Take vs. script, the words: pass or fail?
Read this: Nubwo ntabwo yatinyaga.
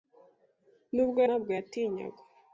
pass